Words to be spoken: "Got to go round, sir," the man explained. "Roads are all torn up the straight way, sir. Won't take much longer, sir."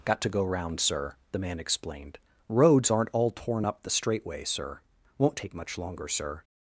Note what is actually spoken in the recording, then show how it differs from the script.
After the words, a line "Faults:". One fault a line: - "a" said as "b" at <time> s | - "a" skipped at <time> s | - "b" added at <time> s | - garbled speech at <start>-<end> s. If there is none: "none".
"Got to go round, sir," the man explained. "Roads aren't all torn up the straight way, sir. Won't take much longer, sir."
Faults:
- "are" said as "aren't" at 2.9 s